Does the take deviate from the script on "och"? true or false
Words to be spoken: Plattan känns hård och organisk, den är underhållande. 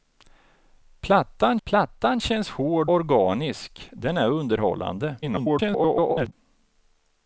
true